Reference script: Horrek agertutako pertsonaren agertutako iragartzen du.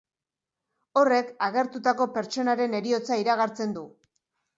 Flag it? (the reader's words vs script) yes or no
yes